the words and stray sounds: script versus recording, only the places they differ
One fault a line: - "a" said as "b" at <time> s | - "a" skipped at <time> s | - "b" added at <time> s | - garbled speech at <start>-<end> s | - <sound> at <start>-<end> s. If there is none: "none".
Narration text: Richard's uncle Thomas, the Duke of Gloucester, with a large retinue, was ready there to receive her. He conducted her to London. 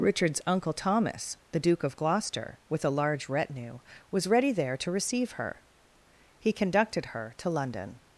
none